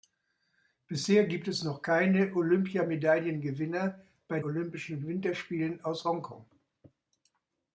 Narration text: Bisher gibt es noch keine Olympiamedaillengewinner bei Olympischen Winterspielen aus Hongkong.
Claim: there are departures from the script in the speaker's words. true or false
false